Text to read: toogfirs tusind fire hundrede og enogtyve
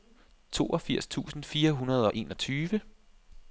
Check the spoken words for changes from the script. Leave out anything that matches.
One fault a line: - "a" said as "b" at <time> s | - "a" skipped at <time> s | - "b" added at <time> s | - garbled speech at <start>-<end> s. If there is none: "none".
none